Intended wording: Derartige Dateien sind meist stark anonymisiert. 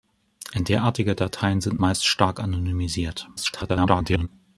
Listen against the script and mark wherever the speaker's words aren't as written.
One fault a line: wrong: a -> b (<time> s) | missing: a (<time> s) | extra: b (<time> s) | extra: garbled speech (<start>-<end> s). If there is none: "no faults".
extra: garbled speech (3.4-4.3 s)